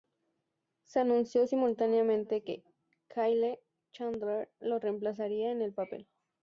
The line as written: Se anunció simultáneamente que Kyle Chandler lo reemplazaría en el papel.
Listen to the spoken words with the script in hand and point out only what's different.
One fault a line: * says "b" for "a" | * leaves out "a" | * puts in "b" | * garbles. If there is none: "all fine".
all fine